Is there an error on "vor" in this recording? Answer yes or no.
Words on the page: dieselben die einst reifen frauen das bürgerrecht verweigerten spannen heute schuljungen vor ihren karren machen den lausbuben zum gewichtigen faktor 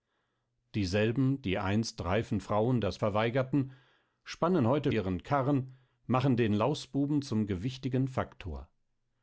yes